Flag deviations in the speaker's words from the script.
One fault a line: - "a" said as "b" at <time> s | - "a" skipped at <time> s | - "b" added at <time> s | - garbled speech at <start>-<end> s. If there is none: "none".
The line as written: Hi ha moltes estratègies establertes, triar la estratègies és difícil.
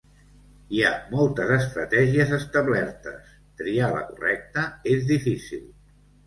- "estratègies" said as "correcta" at 4.1 s